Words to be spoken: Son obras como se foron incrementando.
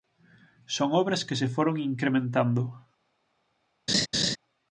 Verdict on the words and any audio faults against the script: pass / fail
fail